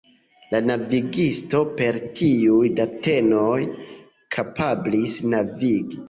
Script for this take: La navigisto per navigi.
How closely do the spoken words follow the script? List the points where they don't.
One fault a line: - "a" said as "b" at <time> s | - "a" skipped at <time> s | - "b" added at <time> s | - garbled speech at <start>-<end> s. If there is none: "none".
- "tiuj datenoj kapablis" added at 2.2 s